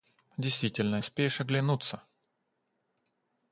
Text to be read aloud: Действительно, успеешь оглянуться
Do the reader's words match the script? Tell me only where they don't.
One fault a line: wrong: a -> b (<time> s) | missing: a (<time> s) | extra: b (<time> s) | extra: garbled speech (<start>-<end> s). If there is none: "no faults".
no faults